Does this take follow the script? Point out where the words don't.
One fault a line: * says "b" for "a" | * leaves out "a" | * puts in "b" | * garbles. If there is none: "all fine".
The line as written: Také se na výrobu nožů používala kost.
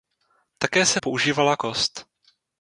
* leaves out "na výrobu nožů"